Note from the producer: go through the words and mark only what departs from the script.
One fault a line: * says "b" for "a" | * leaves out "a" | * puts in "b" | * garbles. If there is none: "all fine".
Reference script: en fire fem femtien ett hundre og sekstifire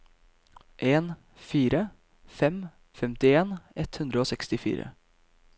all fine